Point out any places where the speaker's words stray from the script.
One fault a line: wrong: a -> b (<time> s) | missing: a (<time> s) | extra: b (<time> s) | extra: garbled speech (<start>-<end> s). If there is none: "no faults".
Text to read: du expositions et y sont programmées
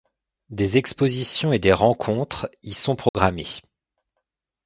wrong: du -> des (0.5 s)
extra: des rencontres (1.6 s)